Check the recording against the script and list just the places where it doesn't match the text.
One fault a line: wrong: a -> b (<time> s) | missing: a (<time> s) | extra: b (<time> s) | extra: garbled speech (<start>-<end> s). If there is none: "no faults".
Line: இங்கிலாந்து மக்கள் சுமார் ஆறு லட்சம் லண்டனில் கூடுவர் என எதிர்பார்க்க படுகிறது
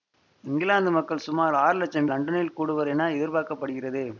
no faults